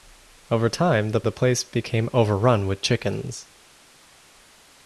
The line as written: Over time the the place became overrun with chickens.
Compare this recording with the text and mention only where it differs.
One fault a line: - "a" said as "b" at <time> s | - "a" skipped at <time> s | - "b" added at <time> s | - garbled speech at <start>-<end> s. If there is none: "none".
none